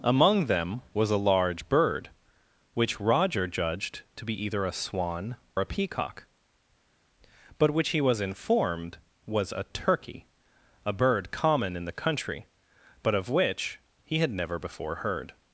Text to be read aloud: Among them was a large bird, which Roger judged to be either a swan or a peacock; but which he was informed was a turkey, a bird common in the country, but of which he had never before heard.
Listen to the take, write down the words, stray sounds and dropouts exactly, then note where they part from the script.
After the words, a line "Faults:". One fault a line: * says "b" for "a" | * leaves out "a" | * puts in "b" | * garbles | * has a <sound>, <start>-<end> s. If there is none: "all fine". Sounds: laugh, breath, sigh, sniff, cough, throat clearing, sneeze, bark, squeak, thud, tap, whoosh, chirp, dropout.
Among them was a large bird, which Roger judged to be either a swan a peacock; but which he was informed was a turkey, a bird common in the country, but of which he had never before heard.
Faults:
* leaves out "or"